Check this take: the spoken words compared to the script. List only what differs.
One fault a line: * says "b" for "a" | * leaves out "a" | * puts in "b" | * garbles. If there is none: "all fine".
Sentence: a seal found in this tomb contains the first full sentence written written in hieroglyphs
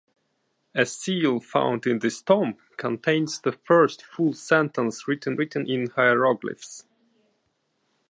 all fine